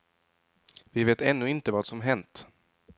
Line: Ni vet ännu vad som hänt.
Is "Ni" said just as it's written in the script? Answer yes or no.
no